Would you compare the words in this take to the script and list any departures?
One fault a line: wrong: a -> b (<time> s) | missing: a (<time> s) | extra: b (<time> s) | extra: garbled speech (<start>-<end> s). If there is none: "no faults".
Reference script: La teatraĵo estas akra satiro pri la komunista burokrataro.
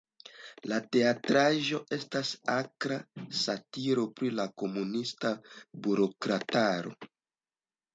no faults